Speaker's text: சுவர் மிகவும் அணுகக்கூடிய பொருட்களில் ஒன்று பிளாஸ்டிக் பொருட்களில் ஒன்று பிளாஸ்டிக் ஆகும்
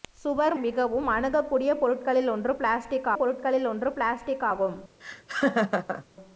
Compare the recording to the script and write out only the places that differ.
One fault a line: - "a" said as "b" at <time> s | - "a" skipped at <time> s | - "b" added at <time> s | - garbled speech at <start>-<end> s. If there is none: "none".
none